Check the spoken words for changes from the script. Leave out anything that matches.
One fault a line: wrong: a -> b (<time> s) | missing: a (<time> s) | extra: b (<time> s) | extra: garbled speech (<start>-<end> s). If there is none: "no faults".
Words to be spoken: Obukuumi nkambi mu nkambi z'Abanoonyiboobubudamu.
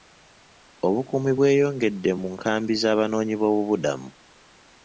wrong: nkambi -> bweyongedde (1.4 s)